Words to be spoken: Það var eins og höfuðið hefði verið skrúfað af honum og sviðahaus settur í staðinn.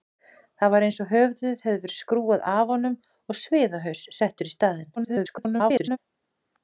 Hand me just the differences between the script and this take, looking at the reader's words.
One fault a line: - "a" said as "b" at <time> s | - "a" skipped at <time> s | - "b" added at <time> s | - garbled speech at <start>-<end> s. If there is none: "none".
- garbled speech at 5.0-6.0 s